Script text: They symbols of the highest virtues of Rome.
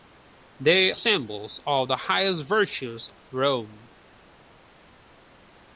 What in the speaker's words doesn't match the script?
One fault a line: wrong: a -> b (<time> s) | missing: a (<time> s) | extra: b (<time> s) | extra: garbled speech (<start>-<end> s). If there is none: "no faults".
no faults